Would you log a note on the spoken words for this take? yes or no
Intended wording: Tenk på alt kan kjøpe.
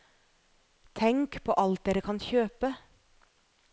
yes